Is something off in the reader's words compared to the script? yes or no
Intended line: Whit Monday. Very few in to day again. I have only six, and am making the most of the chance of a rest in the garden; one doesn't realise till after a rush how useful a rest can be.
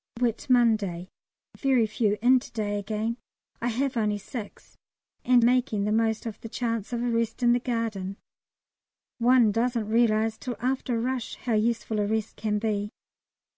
yes